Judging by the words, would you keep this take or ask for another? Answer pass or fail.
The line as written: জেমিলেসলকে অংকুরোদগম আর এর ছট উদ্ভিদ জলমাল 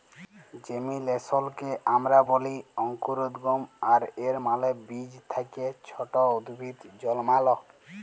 fail